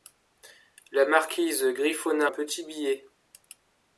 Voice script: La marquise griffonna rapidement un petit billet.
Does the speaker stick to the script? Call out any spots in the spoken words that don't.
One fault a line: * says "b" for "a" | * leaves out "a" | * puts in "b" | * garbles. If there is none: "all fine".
* leaves out "rapidement"